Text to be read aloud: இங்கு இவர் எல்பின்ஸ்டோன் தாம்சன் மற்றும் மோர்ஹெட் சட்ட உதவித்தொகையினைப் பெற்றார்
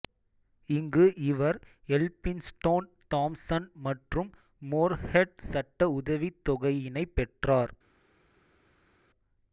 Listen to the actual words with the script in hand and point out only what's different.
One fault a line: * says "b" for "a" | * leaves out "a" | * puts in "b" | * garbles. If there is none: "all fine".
all fine